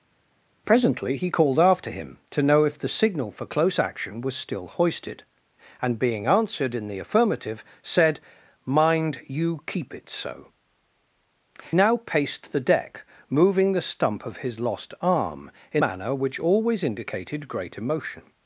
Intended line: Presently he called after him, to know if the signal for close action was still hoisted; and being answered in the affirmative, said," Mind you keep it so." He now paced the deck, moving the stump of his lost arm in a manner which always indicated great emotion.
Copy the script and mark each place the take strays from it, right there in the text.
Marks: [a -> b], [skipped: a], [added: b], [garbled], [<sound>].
Presently he called after him, to know if the signal for close action was still hoisted; and being answered in the affirmative, said," Mind you keep it so." [skipped: He] now paced the deck, moving the stump of his lost arm in [skipped: a] manner which always indicated great emotion.